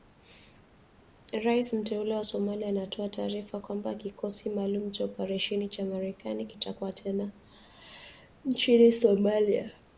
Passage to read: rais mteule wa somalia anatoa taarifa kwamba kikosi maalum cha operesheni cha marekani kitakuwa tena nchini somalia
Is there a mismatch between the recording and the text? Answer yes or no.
no